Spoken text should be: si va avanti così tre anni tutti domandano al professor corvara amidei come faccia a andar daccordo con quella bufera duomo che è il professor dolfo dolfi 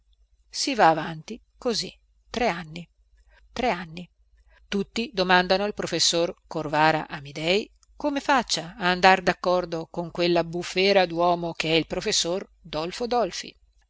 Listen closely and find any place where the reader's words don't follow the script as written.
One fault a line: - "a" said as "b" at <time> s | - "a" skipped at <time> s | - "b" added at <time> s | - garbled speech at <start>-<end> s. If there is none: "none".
- "tre anni" added at 3.5 s